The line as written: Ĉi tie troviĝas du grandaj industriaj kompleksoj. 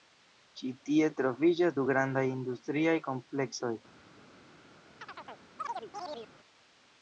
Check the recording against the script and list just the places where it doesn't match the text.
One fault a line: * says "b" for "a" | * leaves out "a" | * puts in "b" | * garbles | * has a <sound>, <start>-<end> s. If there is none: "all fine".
* has a chirp, 5.0-6.3 s